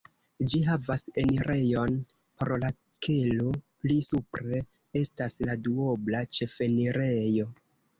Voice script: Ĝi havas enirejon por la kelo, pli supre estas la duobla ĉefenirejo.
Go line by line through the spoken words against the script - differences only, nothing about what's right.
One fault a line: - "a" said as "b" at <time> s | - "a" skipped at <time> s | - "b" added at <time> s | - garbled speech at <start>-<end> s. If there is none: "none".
none